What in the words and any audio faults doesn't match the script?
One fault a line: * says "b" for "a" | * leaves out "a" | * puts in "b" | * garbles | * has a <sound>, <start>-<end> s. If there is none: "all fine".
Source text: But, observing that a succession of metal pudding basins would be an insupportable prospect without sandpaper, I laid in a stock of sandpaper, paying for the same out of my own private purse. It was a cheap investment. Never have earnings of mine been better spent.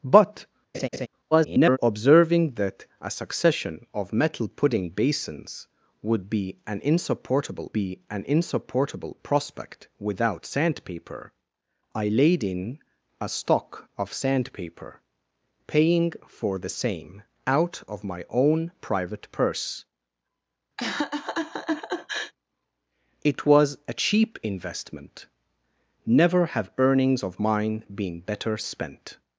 * has a laugh, 0.7-1.1 s
* garbles
* puts in "be an insupportable"
* has a laugh, 20.8-22.3 s